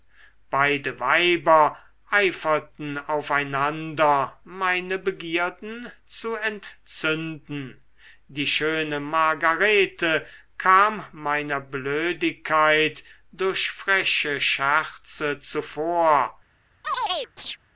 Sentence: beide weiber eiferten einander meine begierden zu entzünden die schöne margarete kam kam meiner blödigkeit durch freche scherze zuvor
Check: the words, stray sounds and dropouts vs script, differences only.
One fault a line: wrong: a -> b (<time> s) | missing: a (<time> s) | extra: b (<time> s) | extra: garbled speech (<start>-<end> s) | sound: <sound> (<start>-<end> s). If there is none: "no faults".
extra: auf (3.0 s)
missing: kam (11.1 s)
sound: chirp (16.8-17.6 s)